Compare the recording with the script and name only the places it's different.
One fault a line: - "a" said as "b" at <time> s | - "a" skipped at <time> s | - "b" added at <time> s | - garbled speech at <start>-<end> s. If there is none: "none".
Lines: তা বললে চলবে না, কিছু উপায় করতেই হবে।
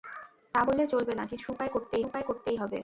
- "উপায় করতেই" added at 2.1 s